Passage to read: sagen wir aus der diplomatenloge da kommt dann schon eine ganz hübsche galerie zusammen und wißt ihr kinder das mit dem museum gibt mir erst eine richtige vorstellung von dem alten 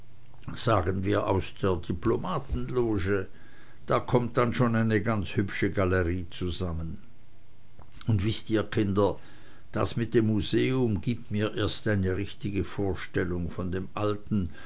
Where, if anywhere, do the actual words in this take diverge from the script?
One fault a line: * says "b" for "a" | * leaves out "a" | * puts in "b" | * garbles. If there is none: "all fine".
all fine